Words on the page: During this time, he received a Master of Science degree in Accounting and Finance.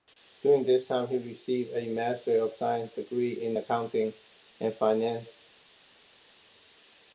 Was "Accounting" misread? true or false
false